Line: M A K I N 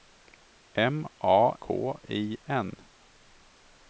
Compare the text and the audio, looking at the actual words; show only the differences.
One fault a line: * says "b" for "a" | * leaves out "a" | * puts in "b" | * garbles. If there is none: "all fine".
all fine